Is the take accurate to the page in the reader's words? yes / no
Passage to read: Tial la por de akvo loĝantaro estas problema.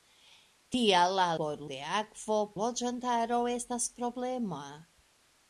yes